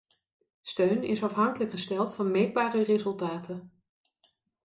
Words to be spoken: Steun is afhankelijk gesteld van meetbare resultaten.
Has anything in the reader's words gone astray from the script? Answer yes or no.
no